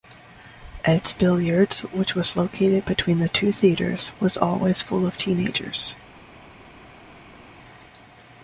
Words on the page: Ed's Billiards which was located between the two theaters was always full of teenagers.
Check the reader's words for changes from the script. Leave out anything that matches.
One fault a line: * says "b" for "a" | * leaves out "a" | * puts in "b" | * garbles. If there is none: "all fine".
all fine